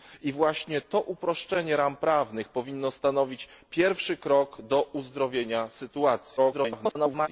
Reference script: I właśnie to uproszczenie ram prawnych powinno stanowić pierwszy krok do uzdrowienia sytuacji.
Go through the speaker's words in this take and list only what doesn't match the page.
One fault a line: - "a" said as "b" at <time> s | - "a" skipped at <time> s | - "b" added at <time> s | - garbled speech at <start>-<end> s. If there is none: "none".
- garbled speech at 6.4-7.3 s